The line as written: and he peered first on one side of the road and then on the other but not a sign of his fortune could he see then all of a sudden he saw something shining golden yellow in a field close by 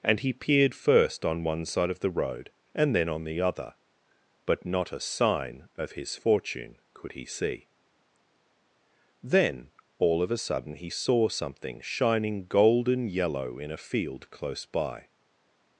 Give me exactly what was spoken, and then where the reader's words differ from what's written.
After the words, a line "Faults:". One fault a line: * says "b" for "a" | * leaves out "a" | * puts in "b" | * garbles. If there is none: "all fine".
and he peered first on one side of the road and then on the other but not a sign of his fortune could he see then all of a sudden he saw something shining golden yellow in a field close by
Faults:
all fine